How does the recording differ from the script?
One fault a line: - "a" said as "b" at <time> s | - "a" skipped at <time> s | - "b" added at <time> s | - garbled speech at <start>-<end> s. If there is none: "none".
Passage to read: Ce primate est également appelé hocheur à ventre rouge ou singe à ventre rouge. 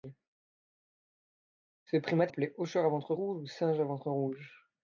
- "est également" skipped at 2.3 s